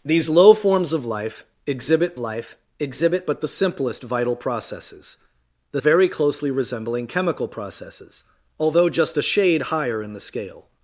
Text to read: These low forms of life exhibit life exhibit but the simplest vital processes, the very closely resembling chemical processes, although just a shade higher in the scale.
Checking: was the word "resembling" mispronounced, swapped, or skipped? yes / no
no